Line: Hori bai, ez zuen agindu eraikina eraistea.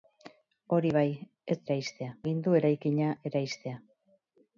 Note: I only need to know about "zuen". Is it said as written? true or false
false